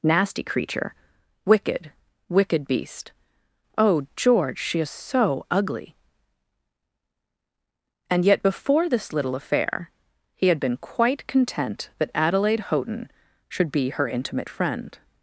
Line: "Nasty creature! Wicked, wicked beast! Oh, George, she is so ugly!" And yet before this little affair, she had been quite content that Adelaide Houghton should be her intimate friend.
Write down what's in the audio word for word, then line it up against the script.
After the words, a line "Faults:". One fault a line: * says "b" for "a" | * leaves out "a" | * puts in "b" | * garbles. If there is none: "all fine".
"Nasty creature! Wicked, wicked beast! Oh, George, she is so ugly!" And yet before this little affair, he had been quite content that Adelaide Houghton should be her intimate friend.
Faults:
* says "he" for "she"